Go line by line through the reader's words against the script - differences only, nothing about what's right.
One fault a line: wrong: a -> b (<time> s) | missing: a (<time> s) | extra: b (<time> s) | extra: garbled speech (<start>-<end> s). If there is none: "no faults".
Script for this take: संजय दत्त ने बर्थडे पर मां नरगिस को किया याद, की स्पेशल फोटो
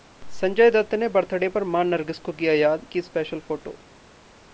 no faults